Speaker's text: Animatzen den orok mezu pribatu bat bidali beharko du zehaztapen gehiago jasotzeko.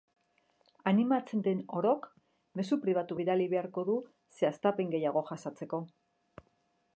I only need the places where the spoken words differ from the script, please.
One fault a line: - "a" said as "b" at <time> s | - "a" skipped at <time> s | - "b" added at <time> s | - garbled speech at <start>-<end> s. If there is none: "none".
- "bat" skipped at 3.2 s